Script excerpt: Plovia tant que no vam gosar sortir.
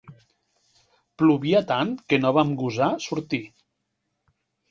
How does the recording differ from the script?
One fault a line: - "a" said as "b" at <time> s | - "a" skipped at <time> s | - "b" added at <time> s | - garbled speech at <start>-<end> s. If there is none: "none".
none